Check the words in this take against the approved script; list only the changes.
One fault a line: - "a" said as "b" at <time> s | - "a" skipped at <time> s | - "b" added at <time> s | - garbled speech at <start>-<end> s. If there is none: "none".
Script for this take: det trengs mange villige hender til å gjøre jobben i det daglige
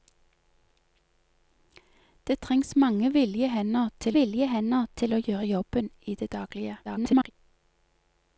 - "villige hender til" added at 4.1 s
- garbled speech at 6.8-7.3 s